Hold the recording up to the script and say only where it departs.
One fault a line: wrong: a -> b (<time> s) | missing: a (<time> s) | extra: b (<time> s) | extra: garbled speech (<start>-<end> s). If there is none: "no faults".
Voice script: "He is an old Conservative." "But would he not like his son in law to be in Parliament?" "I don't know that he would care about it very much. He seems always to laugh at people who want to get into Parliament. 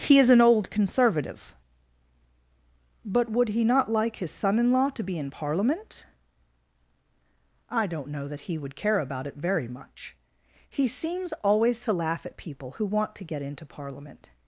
no faults